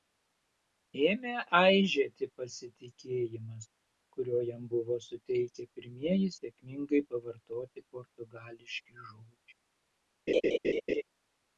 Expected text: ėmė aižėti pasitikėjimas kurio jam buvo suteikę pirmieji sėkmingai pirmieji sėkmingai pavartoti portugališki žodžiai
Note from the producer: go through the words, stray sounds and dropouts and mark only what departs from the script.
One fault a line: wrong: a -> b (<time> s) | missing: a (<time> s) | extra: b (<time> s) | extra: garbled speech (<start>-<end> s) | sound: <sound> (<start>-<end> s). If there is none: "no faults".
missing: pirmieji sėkmingai (7.0 s)
sound: laugh (10.3-11.0 s)